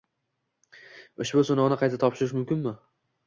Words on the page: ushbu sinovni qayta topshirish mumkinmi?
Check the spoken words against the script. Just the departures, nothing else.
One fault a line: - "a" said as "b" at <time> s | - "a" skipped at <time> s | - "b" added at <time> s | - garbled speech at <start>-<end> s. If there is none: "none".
none